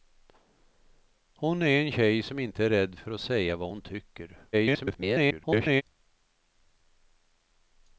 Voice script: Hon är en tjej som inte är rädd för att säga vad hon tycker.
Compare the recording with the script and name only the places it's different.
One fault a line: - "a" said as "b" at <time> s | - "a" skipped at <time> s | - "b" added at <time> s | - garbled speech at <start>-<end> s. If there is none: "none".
- garbled speech at 4.5-5.8 s